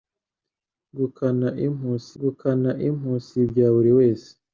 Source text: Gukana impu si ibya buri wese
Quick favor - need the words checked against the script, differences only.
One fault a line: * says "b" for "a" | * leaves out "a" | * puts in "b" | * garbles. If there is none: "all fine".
* puts in "gukana impu si"